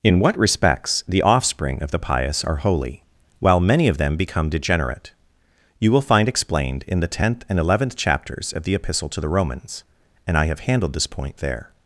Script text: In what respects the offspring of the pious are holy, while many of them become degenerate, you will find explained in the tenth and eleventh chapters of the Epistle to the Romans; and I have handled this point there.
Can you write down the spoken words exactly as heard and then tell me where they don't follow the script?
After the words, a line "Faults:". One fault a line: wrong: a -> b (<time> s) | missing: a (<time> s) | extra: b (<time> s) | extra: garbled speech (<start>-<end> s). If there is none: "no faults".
In what respects the offspring of the pious are holy, while many of them become degenerate, you will find explained in the tenth and eleventh chapters of the Epistle to the Romans; and I have handled this point there.
Faults:
no faults